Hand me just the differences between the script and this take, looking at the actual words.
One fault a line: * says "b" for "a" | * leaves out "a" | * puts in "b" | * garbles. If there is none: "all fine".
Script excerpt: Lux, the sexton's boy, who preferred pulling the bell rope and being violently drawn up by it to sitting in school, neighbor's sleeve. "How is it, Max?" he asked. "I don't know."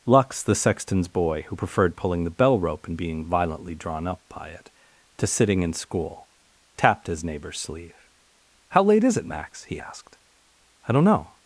* puts in "tapped his"
* puts in "late"